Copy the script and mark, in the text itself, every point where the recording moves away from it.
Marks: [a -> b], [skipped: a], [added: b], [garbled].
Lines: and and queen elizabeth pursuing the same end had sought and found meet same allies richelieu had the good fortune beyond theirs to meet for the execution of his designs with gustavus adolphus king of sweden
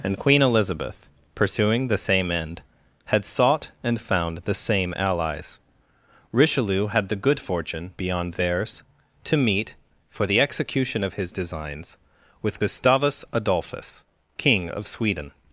and [skipped: and] queen elizabeth pursuing the same end had sought and found [meet -> the] same allies richelieu had the good fortune beyond theirs to meet for the execution of his designs with gustavus adolphus king of sweden